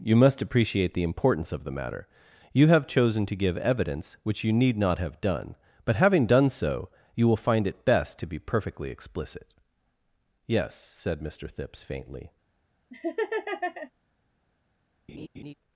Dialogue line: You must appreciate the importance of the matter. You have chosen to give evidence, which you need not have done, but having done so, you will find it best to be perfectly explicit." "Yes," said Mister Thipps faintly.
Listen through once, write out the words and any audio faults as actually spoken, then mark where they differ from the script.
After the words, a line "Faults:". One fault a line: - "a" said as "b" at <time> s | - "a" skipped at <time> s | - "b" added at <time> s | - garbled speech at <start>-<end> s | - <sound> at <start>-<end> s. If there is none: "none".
You must appreciate the importance of the matter. You have chosen to give evidence, which you need not have done, but having done so, you will find it best to be perfectly explicit." "Yes," said Mister Thipps faintly.
Faults:
- laugh at 12.9-13.9 s
- laugh at 15.1-15.5 s